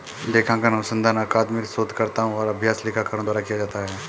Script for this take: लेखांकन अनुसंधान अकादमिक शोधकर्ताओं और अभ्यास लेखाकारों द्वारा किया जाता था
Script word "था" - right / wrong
wrong